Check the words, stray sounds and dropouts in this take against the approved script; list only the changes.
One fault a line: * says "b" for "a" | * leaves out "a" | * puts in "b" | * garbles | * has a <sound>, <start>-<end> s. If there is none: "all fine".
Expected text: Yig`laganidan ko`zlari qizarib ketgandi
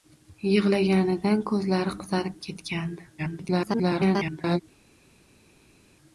* garbles